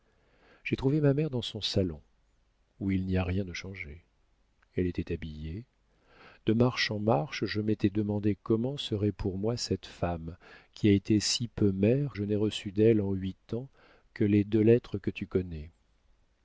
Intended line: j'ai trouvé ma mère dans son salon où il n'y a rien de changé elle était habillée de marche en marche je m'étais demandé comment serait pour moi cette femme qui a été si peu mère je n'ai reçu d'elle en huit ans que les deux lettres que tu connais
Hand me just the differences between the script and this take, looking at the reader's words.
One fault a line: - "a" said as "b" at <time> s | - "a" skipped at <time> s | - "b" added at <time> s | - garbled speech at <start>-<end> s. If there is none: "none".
none